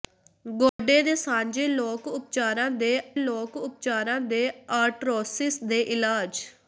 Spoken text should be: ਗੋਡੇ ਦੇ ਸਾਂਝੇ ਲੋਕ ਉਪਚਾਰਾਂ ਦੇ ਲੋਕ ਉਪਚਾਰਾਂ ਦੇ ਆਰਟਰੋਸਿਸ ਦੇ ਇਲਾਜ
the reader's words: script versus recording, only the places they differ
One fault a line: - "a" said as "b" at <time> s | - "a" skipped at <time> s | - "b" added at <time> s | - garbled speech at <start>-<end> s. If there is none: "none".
none